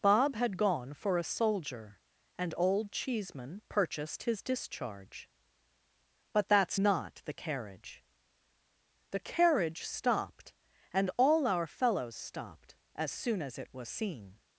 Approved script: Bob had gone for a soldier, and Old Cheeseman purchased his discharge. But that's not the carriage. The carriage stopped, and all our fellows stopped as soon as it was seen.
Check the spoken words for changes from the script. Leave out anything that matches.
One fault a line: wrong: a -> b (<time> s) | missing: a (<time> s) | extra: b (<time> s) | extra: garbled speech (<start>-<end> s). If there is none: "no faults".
no faults